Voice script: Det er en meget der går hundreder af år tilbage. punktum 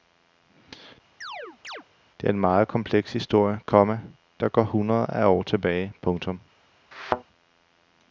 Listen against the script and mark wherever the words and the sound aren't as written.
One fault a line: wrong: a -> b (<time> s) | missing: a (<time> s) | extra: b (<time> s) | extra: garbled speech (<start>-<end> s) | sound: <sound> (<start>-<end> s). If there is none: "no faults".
sound: chirp (1.2-1.8 s)
extra: kompleks historie komma (2.7 s)
sound: thud (6.9-7.2 s)